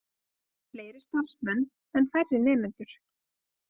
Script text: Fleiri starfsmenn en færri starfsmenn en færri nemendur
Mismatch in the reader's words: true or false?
true